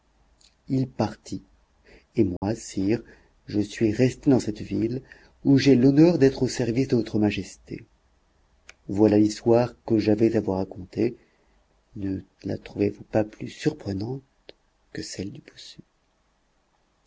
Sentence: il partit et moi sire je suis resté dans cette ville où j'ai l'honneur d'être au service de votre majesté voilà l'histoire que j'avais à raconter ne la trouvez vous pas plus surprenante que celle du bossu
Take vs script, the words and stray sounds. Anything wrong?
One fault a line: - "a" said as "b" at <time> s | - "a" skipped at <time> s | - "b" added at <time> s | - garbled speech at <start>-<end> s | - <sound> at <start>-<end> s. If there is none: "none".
- dropout at 2.4-2.4 s
- "vous" added at 10.4 s